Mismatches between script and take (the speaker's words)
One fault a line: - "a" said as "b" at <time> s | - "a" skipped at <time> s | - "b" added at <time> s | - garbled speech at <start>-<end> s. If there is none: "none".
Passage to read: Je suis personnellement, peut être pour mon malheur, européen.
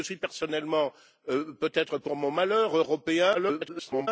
- garbled speech at 3.3-4.1 s